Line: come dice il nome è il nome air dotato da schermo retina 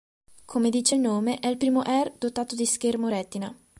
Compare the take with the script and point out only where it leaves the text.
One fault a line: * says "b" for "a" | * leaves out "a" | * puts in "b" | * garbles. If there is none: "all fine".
* says "primo" for "nome"
* says "di" for "da"